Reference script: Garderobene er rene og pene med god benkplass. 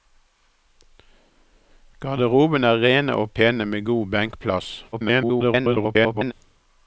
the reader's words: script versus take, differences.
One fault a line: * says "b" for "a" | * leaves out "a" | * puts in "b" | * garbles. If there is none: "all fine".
* garbles